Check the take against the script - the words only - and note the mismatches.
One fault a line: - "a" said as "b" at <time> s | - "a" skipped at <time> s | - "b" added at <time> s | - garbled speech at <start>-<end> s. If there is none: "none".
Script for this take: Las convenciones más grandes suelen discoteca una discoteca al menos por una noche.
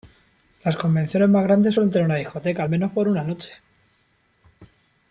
- "discoteca" said as "tener" at 1.9 s